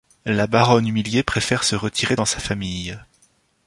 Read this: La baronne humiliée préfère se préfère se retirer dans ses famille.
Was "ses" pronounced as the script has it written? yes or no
no